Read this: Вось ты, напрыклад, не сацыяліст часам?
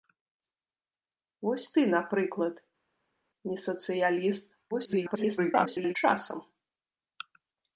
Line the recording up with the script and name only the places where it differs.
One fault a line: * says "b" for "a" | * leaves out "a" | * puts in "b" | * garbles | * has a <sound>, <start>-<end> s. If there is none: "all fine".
* garbles